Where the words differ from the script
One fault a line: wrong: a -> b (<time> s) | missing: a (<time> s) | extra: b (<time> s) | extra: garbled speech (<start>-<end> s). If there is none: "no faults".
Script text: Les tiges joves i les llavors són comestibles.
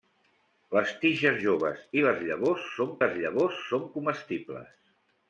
extra: les llavors són (3.0 s)